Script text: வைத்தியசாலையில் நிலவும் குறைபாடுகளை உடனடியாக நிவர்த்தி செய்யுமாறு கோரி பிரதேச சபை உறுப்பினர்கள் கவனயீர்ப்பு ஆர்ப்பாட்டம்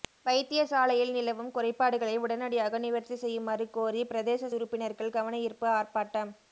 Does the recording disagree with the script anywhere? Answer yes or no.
yes